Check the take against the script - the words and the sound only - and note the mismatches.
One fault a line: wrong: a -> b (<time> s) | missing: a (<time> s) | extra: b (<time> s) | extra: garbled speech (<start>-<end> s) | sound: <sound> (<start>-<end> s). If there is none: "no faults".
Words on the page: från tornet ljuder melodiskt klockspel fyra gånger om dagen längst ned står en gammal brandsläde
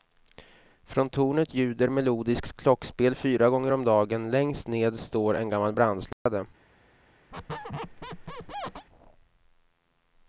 sound: dropout (6.1-6.3 s)
sound: squeak (7.3-8.9 s)